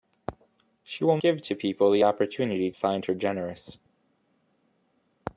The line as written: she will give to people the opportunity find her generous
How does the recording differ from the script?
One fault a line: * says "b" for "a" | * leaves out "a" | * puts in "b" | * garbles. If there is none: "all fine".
all fine